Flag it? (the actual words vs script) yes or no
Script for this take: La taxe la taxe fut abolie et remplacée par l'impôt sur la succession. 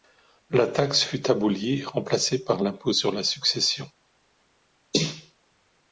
yes